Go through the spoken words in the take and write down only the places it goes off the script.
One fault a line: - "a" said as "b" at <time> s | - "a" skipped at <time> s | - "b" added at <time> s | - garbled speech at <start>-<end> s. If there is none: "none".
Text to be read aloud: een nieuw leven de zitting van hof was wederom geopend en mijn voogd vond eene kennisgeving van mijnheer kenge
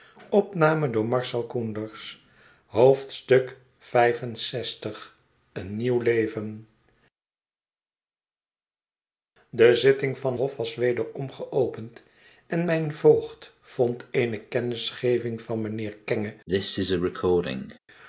none